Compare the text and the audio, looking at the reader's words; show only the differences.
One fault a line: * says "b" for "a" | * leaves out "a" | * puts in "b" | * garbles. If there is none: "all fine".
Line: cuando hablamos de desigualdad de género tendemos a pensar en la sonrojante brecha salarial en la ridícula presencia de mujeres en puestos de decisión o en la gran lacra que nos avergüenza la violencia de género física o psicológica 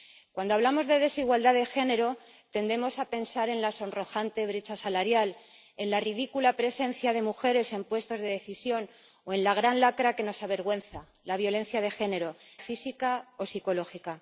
all fine